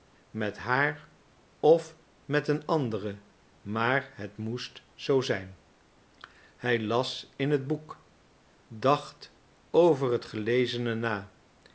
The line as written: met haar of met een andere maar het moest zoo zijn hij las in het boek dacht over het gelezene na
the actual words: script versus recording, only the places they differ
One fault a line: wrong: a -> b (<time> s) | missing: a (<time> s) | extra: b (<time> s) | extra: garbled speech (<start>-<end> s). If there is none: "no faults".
no faults